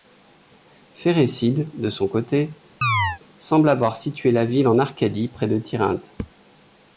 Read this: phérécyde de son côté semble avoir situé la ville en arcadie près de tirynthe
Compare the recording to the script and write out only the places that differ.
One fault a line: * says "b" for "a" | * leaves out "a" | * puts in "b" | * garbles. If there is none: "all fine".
all fine